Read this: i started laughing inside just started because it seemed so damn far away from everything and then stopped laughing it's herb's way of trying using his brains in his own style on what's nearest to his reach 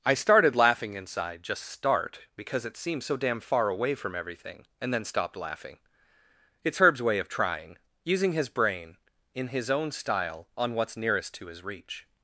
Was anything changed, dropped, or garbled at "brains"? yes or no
yes